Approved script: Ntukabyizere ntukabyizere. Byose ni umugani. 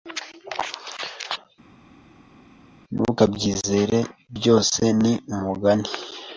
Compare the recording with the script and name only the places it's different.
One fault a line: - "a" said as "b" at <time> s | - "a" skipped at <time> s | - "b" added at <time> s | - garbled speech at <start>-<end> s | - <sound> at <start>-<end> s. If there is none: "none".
- "ntukabyizere" skipped at 4.0 s